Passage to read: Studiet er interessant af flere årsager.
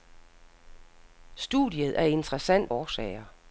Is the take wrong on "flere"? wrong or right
wrong